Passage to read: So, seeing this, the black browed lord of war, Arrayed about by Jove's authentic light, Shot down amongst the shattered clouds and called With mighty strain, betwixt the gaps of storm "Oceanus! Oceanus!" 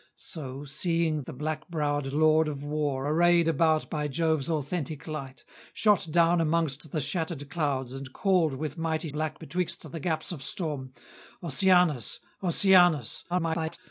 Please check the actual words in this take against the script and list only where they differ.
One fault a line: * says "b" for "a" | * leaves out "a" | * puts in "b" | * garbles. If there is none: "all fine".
* leaves out "this"
* says "black" for "strain"
* garbles